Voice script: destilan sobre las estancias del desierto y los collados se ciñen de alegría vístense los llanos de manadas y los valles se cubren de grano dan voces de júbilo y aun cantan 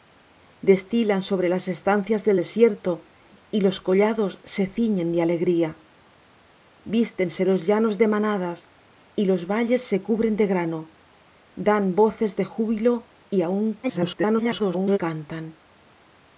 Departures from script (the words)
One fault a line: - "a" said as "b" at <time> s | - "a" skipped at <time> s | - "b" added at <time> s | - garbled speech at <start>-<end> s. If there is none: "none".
- garbled speech at 13.8-15.0 s